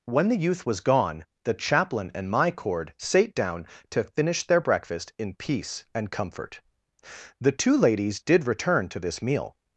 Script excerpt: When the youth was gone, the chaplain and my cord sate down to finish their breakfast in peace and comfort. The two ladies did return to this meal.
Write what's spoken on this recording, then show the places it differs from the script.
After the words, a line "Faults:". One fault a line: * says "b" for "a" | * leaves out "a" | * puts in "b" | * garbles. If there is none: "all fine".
When the youth was gone, the chaplain and my cord sate down to finish their breakfast in peace and comfort. The two ladies did return to this meal.
Faults:
all fine